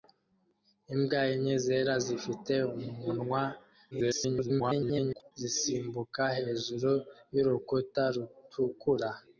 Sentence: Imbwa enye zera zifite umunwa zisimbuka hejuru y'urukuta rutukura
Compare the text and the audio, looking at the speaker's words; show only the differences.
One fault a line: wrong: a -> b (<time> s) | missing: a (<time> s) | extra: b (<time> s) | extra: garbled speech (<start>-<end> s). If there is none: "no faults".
extra: garbled speech (3.9-5.3 s)